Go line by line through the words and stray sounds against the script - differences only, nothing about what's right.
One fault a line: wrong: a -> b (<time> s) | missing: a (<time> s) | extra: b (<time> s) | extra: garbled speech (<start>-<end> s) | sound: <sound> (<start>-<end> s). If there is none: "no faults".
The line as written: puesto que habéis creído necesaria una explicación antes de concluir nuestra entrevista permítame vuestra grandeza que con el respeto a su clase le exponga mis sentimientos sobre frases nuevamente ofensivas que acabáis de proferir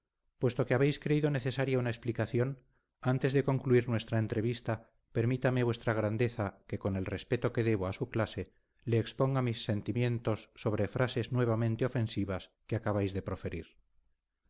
extra: que debo (7.5 s)